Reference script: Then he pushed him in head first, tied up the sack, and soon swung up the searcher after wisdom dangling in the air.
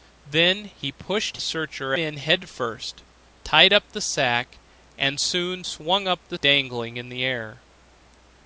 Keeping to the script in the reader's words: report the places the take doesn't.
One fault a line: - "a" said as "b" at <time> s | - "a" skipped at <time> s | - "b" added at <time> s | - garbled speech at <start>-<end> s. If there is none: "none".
- "him" said as "searcher" at 1.4 s
- "searcher after wisdom" skipped at 6.4 s